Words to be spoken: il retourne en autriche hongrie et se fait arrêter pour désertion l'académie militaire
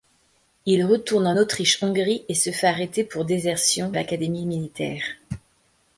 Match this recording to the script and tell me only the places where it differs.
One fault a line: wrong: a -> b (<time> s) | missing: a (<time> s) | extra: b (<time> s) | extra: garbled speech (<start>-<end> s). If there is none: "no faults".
no faults